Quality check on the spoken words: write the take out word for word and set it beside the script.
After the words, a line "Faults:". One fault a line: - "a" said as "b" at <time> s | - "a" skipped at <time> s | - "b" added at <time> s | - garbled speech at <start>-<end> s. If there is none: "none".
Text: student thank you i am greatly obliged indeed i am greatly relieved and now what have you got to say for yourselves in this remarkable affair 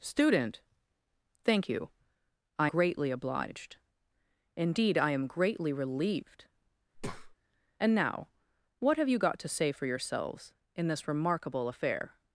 student thank you i greatly obliged indeed i am greatly relieved and now what have you got to say for yourselves in this remarkable affair
Faults:
- "am" skipped at 2.7 s